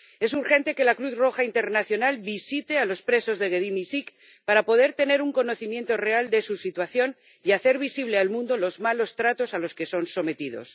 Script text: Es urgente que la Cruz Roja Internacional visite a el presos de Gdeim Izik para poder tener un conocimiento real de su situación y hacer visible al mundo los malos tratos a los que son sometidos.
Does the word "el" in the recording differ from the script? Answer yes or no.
yes